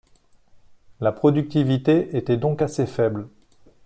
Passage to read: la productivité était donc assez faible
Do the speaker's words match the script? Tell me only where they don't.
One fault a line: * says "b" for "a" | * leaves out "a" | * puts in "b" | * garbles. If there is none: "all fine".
all fine